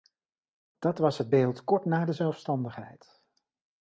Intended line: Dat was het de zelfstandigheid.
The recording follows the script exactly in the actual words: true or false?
false